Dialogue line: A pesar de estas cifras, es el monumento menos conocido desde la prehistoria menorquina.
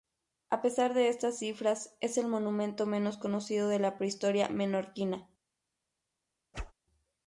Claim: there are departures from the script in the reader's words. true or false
true